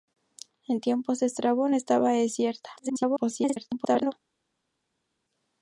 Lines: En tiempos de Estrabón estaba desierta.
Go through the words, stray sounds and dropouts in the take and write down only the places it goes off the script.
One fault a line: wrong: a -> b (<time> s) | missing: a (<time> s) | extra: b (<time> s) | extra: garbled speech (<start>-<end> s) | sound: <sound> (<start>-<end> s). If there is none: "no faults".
extra: garbled speech (2.8-4.1 s)